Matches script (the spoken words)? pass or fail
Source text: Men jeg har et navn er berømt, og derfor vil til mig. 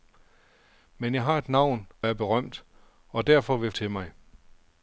pass